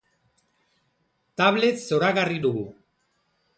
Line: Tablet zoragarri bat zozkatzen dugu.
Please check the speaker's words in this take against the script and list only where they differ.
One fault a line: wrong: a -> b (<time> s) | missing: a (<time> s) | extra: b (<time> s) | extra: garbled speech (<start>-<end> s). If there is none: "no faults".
missing: bat zozkatzen (2.4 s)